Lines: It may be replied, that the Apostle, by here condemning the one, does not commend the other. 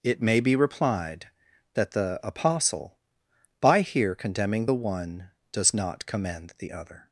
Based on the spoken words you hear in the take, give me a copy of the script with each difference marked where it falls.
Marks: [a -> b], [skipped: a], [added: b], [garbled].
It may be replied, that the Apostle, by here condemning the one, does not commend the other.